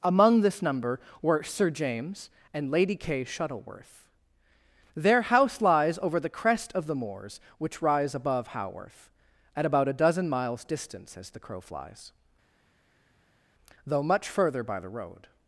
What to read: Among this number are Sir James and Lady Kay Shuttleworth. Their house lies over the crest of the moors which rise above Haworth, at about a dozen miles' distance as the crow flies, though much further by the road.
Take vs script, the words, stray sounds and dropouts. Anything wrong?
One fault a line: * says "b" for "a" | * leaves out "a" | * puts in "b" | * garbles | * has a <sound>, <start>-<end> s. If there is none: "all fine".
* says "were" for "are"